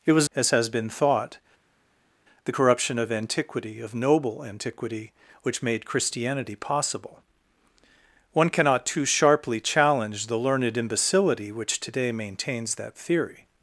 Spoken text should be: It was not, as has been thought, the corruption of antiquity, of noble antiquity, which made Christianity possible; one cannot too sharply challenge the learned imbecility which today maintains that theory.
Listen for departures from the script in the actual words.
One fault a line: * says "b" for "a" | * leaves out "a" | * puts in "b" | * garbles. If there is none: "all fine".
* leaves out "not"